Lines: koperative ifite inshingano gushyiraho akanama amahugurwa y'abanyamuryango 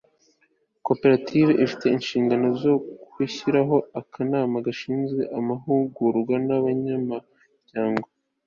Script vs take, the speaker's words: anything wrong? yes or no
yes